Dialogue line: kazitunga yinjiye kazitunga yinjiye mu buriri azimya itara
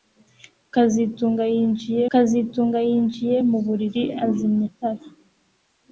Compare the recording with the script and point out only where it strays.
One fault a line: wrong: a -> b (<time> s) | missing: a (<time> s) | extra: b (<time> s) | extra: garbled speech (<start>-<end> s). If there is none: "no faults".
no faults